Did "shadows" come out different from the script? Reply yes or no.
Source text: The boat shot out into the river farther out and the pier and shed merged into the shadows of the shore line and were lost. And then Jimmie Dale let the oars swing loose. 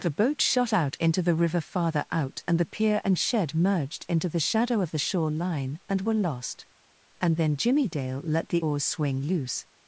yes